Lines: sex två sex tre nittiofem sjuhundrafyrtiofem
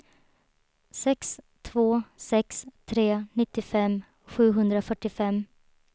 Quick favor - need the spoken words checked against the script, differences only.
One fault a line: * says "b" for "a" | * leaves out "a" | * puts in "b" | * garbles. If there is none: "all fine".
all fine